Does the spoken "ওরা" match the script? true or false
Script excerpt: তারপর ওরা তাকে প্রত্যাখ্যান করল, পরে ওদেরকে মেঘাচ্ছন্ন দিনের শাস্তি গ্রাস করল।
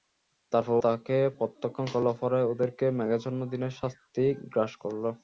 false